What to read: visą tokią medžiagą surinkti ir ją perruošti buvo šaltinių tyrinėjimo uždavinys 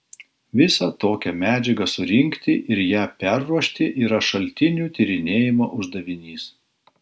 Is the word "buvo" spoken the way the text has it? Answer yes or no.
no